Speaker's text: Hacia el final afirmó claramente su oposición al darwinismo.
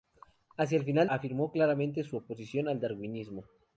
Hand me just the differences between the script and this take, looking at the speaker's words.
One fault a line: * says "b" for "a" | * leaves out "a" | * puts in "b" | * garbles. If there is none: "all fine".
all fine